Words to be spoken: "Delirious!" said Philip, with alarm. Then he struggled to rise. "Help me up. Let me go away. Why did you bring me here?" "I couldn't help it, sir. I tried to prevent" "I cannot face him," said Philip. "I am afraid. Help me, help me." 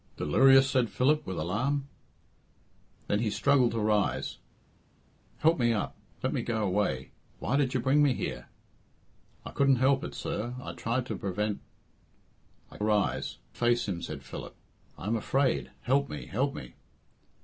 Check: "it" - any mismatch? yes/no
no